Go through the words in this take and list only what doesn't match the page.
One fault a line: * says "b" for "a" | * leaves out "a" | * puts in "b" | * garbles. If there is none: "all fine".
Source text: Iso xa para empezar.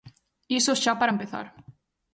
all fine